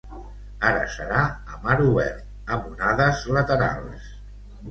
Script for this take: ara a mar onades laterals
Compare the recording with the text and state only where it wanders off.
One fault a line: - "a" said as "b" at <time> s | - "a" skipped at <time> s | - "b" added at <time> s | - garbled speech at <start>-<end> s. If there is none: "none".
- "serà" added at 0.9 s
- "obert amb" added at 1.9 s